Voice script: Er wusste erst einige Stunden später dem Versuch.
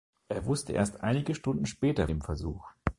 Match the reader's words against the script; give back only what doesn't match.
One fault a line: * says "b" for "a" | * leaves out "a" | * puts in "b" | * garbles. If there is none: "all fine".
all fine